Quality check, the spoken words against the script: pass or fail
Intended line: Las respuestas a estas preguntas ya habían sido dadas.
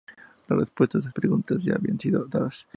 fail